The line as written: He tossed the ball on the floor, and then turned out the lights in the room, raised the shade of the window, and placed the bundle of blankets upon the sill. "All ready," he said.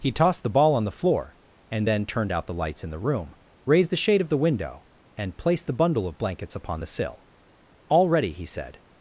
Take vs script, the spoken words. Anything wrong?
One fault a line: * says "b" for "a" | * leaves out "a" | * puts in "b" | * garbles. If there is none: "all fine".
all fine